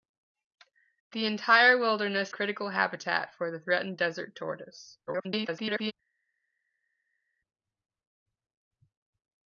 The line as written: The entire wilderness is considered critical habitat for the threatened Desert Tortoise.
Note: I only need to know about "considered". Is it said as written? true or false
false